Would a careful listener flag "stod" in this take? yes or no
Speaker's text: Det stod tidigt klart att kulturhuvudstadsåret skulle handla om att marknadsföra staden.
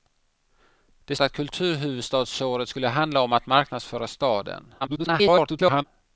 yes